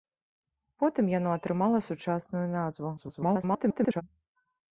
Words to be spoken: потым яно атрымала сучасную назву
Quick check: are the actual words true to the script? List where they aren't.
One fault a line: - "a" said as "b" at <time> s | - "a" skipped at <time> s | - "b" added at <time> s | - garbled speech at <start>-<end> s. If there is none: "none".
- garbled speech at 3.0-4.0 s